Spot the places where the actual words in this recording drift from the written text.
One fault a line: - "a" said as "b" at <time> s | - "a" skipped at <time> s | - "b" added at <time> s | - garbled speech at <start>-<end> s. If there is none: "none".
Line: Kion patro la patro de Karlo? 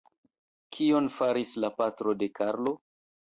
- "patro" said as "faris" at 1.2 s